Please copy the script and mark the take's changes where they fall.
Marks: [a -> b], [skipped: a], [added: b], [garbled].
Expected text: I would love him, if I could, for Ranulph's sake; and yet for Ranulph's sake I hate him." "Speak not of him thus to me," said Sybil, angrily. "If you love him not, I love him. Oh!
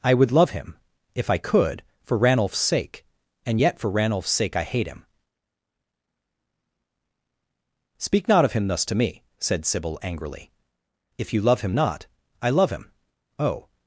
I would love him, if I could, for Ranulph's sake; and yet for Ranulph's sake I hate him." "Speak not of him thus to me," said Sybil, angrily. "If you love him not, I love him. Oh!